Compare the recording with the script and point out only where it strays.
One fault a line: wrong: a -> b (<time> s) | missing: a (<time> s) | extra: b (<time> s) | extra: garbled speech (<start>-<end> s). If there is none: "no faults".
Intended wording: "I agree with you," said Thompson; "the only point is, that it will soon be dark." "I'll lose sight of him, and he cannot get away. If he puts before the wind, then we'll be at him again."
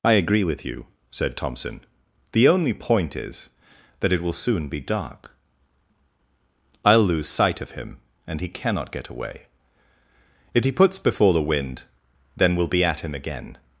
no faults